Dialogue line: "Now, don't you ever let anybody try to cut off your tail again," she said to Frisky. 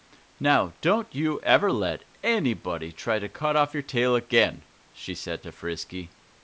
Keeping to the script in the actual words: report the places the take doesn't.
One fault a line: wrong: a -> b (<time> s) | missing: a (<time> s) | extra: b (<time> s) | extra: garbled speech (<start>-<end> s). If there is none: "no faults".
no faults